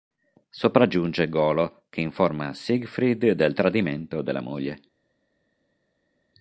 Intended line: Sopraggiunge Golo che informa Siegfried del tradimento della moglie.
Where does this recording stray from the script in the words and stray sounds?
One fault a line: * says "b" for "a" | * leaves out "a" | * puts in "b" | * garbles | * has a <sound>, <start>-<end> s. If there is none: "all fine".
all fine